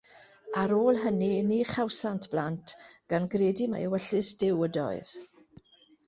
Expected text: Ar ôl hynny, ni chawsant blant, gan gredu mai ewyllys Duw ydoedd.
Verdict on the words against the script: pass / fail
pass